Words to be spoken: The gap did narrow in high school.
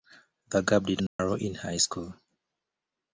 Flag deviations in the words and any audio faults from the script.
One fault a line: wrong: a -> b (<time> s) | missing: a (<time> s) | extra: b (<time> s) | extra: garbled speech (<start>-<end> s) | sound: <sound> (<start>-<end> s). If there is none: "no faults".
sound: dropout (1.1-1.2 s)